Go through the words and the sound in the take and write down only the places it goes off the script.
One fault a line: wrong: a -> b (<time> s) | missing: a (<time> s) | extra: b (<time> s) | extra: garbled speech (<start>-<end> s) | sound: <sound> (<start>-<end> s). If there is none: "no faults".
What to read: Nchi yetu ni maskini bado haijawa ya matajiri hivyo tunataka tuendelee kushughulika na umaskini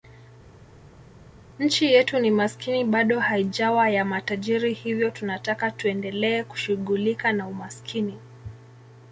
no faults